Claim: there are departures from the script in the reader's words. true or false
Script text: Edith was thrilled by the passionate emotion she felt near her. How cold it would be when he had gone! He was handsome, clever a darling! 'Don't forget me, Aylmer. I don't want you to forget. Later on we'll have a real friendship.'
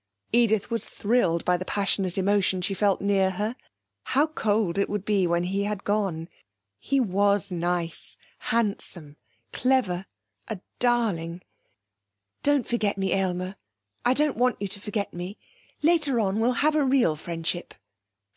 true